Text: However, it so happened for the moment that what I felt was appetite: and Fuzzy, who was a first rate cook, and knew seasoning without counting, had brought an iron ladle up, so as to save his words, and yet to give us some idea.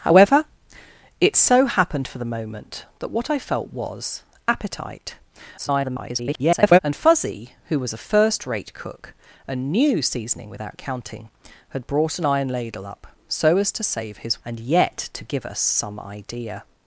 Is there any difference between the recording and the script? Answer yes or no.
yes